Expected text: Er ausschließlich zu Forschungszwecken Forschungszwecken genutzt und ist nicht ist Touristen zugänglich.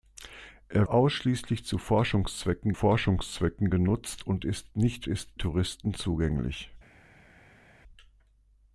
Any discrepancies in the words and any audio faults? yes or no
no